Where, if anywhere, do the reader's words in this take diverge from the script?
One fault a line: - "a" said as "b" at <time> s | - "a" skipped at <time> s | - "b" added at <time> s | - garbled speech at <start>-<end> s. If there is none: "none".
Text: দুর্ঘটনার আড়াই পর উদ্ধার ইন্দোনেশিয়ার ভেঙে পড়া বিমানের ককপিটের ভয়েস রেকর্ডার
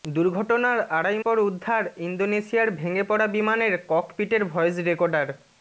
none